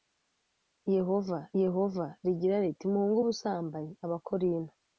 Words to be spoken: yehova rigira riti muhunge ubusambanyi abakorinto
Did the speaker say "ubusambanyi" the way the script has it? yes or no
yes